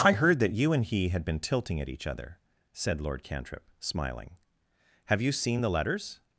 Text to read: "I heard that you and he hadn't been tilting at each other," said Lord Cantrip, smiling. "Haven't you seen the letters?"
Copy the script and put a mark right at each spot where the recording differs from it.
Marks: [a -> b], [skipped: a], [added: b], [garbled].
"I heard that you and he [hadn't -> had] been tilting at each other," said Lord Cantrip, smiling. ["Haven't -> Have] you seen the letters?"